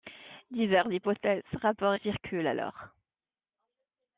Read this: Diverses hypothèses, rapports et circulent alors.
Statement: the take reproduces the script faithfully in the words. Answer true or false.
true